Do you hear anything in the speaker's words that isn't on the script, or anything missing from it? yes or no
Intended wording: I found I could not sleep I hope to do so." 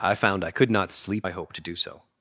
no